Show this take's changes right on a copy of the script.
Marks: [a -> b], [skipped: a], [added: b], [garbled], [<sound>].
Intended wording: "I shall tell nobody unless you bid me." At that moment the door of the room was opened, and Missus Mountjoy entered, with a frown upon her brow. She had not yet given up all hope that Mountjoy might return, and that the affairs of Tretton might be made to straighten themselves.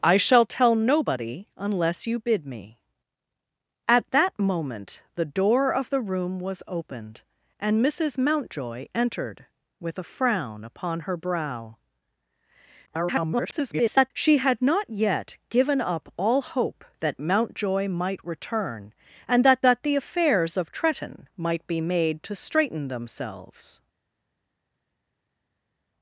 "I shall tell nobody unless you bid me." At that moment the door of the room was opened, and Missus Mountjoy entered, with a frown upon her brow. [garbled] She had not yet given up all hope that Mountjoy might return, and that [added: that] the affairs of Tretton might be made to straighten themselves.